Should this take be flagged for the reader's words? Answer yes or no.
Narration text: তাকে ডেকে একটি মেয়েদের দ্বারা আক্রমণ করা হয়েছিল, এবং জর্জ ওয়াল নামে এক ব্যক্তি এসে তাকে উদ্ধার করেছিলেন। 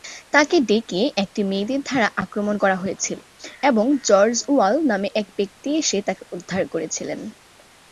no